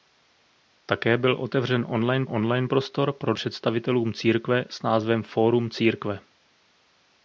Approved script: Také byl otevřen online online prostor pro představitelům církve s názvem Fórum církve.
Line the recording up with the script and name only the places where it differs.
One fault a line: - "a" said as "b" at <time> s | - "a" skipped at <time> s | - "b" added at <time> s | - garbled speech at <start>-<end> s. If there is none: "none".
none